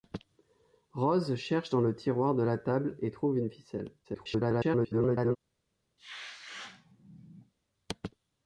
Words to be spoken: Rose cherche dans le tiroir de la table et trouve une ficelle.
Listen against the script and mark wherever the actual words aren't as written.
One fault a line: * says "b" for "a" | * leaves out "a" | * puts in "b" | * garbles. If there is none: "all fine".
* garbles